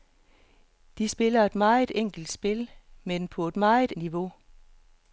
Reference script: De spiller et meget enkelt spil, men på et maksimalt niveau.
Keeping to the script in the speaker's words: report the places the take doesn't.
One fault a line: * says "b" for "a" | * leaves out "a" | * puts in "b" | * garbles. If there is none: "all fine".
* says "meget" for "maksimalt"